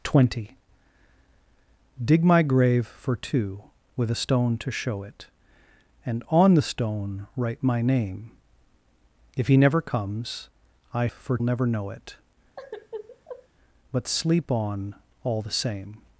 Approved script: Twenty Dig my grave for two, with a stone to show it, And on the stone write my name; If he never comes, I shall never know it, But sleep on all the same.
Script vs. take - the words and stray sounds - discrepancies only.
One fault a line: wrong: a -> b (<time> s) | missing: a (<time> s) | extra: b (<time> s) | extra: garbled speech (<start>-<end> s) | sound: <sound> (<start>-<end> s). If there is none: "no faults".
wrong: shall -> for (11.1 s)
sound: sigh (12.6-13.5 s)